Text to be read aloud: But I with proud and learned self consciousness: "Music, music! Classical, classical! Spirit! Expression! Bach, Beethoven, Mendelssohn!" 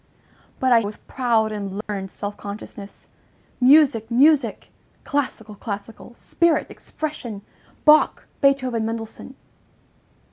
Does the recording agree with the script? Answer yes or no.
yes